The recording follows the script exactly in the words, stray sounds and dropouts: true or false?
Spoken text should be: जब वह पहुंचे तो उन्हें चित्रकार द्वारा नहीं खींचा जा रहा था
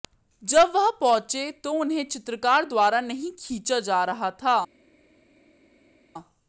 true